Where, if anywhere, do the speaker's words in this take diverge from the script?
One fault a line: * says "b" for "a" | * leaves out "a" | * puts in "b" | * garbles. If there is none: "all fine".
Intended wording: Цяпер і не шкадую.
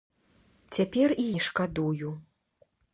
all fine